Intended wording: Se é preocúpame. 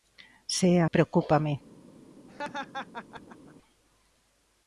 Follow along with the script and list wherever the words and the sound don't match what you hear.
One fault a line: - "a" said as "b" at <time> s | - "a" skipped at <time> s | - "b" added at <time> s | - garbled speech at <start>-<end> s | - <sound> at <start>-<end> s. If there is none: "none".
- laugh at 2.3-3.5 s